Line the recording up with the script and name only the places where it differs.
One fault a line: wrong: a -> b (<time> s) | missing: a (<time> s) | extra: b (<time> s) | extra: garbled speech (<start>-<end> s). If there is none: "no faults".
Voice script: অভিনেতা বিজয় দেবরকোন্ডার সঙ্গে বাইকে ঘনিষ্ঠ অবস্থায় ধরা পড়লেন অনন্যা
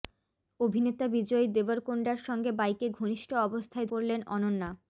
missing: ধরা (3.9 s)